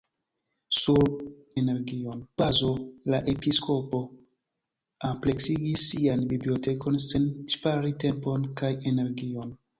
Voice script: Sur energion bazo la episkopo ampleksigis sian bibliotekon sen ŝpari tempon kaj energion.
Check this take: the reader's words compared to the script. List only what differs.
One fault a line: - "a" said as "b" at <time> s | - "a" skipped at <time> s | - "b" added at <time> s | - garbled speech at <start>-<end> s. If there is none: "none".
none